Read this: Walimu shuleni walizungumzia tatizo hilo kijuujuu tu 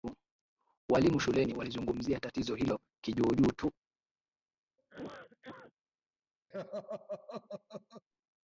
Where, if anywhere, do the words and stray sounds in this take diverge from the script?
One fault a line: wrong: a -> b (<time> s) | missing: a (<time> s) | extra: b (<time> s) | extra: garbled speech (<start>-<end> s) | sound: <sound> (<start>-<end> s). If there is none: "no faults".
sound: cough (4.8-5.7 s)
sound: laugh (6.5-8.0 s)